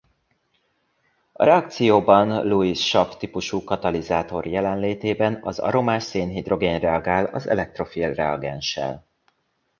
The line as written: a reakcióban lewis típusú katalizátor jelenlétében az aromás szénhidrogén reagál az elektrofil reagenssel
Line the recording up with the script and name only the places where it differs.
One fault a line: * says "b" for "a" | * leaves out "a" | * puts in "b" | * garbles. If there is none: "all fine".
* puts in "sav"